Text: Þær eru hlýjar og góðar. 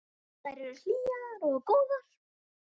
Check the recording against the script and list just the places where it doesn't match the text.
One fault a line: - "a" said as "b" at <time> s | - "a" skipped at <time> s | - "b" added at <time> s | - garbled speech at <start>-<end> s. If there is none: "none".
none